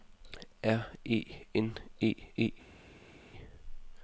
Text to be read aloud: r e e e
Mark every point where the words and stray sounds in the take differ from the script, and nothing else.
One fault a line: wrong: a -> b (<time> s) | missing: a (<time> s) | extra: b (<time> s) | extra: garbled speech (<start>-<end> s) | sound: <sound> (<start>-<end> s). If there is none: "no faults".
extra: n (1.5 s)